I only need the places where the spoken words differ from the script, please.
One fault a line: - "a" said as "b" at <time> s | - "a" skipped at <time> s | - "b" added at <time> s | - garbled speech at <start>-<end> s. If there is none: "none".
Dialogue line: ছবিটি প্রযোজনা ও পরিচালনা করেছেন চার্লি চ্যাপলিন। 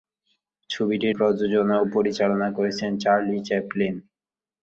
none